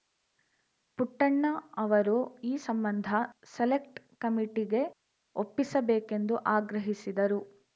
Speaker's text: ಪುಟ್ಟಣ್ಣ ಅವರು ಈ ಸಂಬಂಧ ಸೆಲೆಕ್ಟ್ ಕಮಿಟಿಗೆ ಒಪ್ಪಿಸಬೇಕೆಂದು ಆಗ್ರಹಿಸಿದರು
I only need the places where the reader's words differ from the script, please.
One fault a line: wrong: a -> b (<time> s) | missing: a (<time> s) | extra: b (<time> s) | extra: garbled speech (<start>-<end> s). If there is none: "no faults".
no faults